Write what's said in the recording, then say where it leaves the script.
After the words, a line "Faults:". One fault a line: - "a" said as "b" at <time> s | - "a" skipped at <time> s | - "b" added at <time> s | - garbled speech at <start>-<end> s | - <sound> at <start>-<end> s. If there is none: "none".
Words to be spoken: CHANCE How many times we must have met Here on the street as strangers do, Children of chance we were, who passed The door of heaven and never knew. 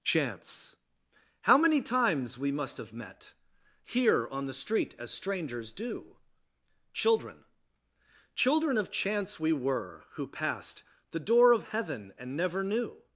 CHANCE How many times we must have met Here on the street as strangers do, Children Children of chance we were, who passed The door of heaven and never knew.
Faults:
- "Children" added at 8.3 s